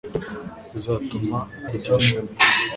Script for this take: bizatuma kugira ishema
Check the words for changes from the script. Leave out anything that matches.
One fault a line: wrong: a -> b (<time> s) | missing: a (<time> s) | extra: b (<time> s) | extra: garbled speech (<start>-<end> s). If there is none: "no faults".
no faults